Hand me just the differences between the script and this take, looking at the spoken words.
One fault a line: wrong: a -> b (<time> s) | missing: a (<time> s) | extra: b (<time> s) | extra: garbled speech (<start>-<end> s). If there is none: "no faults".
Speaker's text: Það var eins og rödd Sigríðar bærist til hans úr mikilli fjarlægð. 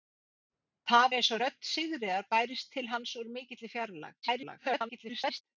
missing: var (1.0 s)
extra: garbled speech (4.2-5.4 s)